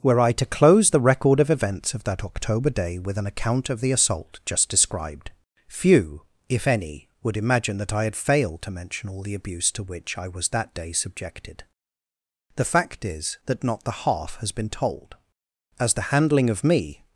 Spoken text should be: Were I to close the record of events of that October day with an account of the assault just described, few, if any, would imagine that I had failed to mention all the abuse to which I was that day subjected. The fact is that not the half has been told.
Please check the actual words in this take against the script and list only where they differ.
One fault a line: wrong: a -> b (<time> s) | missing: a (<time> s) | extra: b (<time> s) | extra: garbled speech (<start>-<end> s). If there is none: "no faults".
extra: As the handling of me (15.8 s)